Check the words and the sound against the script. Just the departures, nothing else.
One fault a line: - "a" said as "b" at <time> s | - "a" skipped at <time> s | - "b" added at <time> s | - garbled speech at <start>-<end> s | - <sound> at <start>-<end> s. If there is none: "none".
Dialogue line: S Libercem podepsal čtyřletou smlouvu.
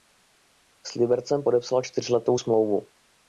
none